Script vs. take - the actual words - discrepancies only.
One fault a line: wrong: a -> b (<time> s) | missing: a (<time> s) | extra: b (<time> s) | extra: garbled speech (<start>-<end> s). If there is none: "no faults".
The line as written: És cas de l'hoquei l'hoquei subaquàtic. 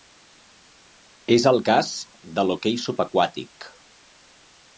extra: el (1.5 s)
missing: l'hoquei (2.8 s)